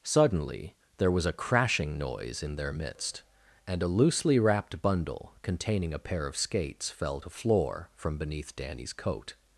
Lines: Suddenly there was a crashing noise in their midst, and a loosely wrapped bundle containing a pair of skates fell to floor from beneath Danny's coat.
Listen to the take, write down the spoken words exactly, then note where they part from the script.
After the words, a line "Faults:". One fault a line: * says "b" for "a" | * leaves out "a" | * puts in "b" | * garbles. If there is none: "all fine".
Suddenly there was a crashing noise in their midst, and a loosely wrapped bundle containing a pair of skates fell to floor from beneath Danny's coat.
Faults:
all fine